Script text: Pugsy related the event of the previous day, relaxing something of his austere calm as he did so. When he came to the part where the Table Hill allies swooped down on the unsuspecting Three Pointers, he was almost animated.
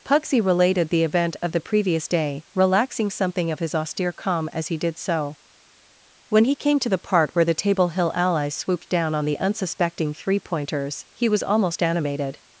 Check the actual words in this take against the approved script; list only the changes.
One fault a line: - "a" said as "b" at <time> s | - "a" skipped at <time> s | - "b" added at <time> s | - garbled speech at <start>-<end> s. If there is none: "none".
none